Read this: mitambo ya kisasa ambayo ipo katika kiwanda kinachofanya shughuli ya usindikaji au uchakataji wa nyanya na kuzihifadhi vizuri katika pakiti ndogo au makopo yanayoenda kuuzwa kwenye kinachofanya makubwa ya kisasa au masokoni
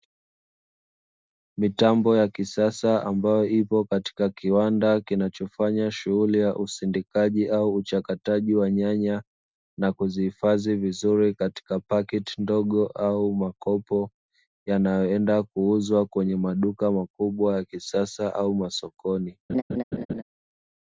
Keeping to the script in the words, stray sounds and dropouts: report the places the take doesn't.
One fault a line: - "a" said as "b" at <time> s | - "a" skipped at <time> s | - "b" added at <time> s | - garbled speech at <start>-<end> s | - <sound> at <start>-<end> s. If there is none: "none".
- "kinachofanya" said as "maduka" at 16.4 s
- laugh at 19.5-20.2 s